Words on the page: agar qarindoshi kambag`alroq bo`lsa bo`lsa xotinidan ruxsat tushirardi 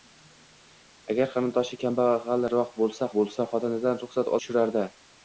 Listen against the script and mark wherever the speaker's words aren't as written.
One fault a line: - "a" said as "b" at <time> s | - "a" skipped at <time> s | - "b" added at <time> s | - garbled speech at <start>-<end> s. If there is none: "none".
none